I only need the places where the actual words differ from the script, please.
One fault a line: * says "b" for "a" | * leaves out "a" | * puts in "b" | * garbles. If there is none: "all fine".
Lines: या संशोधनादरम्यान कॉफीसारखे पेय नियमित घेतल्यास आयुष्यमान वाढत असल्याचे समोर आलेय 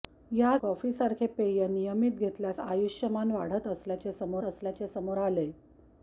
* leaves out "संशोधनादरम्यान"
* puts in "असल्याचे समोर"